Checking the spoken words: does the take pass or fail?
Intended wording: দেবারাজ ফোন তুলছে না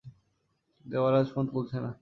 pass